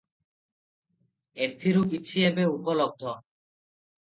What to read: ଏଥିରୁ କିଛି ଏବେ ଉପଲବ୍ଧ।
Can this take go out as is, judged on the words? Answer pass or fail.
pass